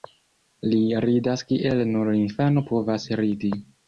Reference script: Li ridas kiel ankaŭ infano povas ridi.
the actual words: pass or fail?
fail